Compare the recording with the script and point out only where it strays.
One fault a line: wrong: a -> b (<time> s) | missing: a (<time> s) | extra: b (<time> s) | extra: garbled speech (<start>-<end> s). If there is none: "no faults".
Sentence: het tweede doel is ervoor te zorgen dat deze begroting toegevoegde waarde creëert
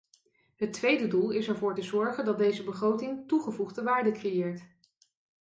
no faults